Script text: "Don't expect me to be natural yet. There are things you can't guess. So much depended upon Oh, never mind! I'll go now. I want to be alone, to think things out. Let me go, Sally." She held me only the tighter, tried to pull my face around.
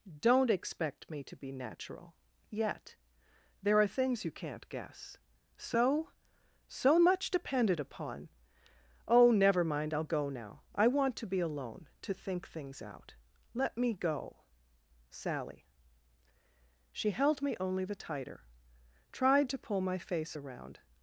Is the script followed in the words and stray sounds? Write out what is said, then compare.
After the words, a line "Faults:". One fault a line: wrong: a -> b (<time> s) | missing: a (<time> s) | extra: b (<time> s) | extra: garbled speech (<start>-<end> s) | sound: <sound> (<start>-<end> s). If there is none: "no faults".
"Don't expect me to be natural yet. There are things you can't guess. So So much depended upon Oh, never mind! I'll go now. I want to be alone, to think things out. Let me go, Sally." She held me only the tighter, tried to pull my face around.
Faults:
extra: So (6.7 s)